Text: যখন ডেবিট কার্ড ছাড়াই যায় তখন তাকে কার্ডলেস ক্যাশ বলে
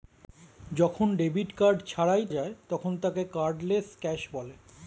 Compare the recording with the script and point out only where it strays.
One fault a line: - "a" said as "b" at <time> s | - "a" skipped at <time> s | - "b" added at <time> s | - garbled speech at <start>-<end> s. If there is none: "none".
none